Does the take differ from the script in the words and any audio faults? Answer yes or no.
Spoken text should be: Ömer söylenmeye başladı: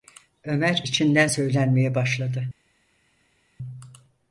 yes